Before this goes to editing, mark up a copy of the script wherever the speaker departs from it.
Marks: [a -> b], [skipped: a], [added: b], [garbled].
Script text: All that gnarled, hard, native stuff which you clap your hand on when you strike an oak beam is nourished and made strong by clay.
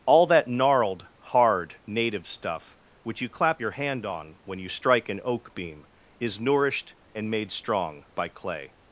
All that gnarled, hard, native stuff which you clap your hand on when you strike an oak beam is nourished and made strong by clay.